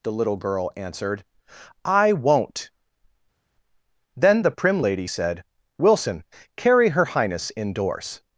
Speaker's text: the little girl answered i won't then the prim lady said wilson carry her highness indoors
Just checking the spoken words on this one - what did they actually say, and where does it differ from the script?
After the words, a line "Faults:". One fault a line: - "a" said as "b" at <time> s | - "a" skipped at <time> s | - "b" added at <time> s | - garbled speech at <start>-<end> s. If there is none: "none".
the little girl answered i won't then the prim lady said wilson carry her highness indoors
Faults:
none